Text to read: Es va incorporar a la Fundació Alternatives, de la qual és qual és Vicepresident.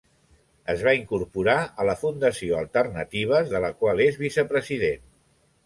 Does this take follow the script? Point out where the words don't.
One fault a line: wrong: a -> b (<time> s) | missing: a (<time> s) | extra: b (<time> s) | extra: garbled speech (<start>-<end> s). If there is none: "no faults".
missing: qual és (4.2 s)